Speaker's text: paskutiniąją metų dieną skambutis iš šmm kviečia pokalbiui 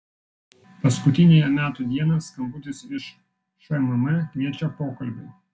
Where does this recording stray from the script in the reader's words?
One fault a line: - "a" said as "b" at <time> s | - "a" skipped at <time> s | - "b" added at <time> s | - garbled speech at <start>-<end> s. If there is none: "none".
none